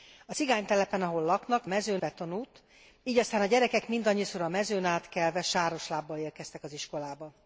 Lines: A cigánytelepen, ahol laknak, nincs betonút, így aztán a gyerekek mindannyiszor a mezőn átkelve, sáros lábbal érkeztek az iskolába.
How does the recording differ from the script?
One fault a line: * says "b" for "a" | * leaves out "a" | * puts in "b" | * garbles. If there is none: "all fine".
* says "mezőn" for "nincs"